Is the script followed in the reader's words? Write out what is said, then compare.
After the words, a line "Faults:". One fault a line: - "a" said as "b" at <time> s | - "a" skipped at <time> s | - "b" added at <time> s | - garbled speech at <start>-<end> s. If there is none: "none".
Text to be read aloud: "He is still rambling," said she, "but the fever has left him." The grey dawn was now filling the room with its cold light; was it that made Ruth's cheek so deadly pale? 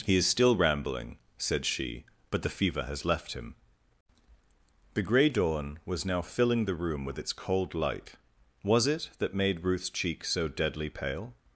"He is still rambling," said she, "but the fever has left him." The grey dawn was now filling the room with its cold light; was it that made Ruth's cheek so deadly pale?
Faults:
none